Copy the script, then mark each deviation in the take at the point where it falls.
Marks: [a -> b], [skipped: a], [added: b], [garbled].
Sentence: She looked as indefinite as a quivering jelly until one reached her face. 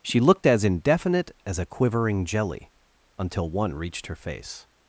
She looked as indefinite as a quivering jelly until one reached her face.